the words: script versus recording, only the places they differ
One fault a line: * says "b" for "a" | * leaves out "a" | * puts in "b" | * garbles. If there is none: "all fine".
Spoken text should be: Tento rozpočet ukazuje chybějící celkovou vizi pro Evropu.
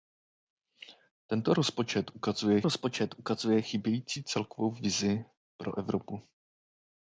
* puts in "rozpočet ukazuje"